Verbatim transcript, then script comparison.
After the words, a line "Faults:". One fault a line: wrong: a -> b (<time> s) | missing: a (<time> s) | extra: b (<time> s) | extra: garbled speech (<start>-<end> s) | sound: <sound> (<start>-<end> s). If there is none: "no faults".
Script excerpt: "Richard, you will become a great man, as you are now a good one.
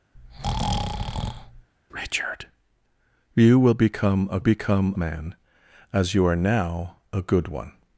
"Richard, you will become a become man, as you are now a good one.
Faults:
sound: breath (0.1-1.7 s)
wrong: great -> become (4.4 s)